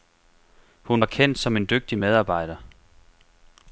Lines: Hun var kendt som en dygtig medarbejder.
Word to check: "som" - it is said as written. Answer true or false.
true